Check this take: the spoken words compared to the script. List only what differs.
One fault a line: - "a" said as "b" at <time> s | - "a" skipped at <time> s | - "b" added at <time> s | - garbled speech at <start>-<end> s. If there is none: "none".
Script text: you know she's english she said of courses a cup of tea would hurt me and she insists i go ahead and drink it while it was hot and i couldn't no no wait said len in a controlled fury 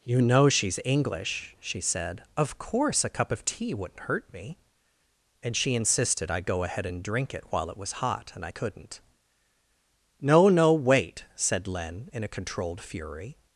- "courses" said as "course" at 2.6 s
- "would" said as "wouldn't" at 3.7 s
- "insists" said as "insisted" at 5.8 s